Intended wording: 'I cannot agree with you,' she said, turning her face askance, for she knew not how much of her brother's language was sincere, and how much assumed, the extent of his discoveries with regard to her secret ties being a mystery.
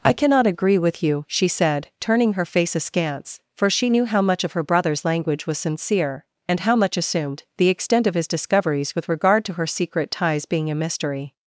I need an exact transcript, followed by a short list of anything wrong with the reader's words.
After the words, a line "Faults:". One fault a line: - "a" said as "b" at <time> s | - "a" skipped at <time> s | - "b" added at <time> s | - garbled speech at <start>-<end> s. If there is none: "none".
'I cannot agree with you,' she said, turning her face askance, for she knew how much of her brother's language was sincere, and how much assumed, the extent of his discoveries with regard to her secret ties being a mystery.
Faults:
- "not" skipped at 4.0 s